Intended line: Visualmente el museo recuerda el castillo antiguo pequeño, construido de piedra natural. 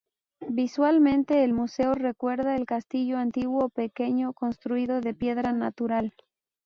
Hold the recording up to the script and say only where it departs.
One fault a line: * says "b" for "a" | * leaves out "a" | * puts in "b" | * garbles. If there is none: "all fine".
all fine